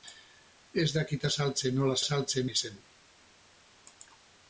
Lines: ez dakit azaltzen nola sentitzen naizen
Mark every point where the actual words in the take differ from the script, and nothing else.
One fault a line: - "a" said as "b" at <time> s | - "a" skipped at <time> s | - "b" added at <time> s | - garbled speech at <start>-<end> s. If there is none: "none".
- "sentitzen" said as "azaltzen" at 2.0 s